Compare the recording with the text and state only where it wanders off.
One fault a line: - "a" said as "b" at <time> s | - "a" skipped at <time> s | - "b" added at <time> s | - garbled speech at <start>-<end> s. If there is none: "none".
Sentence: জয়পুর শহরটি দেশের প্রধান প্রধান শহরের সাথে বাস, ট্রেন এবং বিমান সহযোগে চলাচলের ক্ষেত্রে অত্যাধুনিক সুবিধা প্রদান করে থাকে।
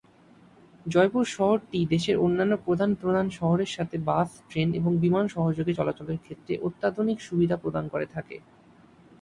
- "অন্যান্য" added at 2.2 s